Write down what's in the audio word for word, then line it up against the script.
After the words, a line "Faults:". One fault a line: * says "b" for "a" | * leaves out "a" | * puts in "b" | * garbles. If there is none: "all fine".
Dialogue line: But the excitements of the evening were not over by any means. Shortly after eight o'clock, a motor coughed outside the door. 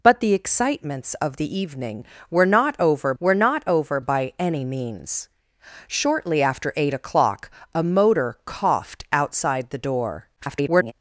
But the excitements of the evening were not over were not over by any means. Shortly after eight o'clock, a motor coughed outside the door. [garbled]
Faults:
* puts in "were not over"
* garbles